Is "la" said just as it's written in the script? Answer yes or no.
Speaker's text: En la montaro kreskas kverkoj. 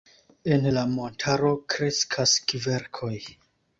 yes